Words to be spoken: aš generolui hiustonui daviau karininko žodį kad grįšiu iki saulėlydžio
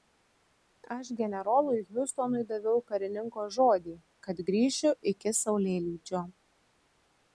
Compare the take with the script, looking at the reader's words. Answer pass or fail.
pass